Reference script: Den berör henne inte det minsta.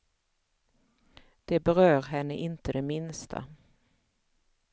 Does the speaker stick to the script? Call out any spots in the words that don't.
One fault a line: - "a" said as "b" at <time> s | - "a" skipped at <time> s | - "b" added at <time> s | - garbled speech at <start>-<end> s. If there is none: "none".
- "Den" said as "Det" at 1.4 s